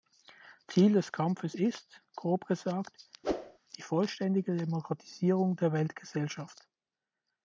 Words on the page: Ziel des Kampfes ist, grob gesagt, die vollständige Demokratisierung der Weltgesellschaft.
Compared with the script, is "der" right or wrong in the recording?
right